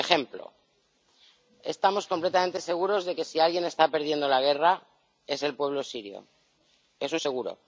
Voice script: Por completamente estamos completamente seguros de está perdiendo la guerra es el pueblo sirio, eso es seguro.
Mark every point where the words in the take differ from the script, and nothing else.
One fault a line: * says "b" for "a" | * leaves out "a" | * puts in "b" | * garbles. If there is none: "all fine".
* says "ejemplo" for "completamente"
* puts in "que si alguien"